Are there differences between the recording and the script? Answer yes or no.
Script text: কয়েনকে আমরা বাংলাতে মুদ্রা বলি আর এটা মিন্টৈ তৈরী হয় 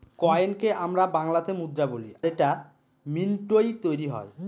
yes